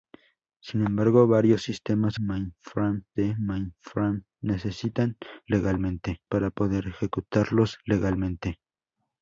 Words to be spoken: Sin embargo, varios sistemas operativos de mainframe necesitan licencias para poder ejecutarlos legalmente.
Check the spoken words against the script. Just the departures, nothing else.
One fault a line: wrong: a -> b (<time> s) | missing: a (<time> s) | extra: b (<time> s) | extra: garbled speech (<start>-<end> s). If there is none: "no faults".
wrong: operativos -> mainframe (2.2 s)
wrong: licencias -> legalmente (5.5 s)